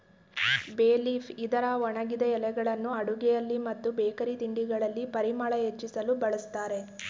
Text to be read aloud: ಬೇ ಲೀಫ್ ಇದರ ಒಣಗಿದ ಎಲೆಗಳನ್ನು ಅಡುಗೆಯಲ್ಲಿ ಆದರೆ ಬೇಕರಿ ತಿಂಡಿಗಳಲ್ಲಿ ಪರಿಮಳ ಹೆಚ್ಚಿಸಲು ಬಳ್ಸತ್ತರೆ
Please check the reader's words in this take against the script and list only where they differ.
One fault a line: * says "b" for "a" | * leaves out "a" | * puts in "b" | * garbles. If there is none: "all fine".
* says "ಮತ್ತು" for "ಆದರೆ"